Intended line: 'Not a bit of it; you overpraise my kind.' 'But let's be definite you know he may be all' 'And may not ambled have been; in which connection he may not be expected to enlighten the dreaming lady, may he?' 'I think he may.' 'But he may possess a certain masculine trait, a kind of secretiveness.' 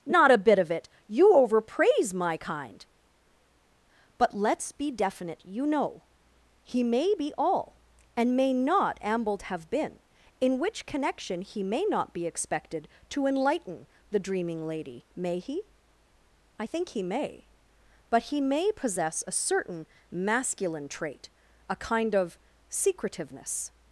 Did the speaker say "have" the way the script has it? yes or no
yes